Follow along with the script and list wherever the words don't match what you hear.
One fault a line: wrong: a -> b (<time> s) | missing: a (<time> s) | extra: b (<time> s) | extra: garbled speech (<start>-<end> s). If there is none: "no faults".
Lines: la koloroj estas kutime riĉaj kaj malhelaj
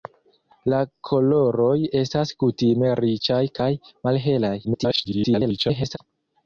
extra: garbled speech (4.6-6.0 s)